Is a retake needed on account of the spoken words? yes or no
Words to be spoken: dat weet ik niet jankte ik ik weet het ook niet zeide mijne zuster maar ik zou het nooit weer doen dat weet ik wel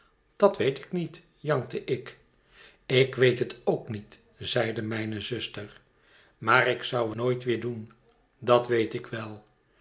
yes